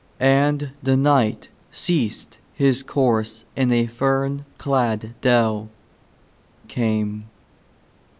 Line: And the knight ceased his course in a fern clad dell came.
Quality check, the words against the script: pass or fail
pass